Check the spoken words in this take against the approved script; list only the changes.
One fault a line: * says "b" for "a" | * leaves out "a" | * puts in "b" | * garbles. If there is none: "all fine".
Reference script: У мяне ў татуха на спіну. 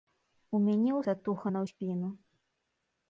all fine